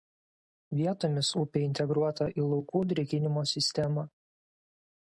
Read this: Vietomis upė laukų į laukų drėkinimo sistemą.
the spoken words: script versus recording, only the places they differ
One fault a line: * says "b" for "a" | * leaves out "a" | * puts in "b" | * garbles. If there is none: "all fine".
* says "integruota" for "laukų"